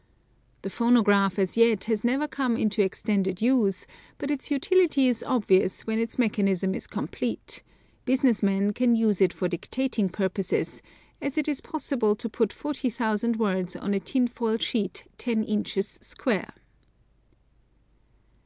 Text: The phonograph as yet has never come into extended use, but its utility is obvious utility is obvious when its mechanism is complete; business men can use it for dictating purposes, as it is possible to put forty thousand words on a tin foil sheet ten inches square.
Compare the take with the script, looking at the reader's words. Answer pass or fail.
fail